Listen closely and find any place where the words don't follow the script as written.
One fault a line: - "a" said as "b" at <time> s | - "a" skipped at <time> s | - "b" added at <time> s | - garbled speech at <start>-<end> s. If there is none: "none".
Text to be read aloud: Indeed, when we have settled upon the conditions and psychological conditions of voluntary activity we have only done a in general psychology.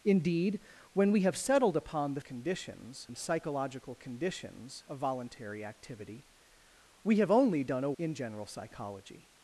none